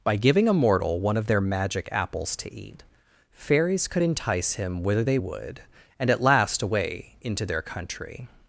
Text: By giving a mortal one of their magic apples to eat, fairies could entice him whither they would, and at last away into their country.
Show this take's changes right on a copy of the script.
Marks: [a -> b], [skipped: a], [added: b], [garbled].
By giving a mortal one of their magic apples to eat, fairies could entice him whither they would, and at last away into their country.